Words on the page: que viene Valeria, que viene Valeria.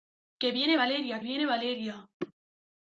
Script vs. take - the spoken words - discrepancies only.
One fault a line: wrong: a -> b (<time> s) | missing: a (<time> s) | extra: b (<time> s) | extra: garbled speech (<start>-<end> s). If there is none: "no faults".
missing: que (1.2 s)